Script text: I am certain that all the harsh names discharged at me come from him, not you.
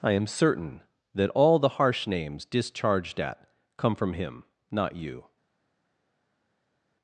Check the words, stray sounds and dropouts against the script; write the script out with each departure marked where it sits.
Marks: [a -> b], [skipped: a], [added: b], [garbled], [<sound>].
I am certain that all the harsh names discharged at [skipped: me] come from him, not you.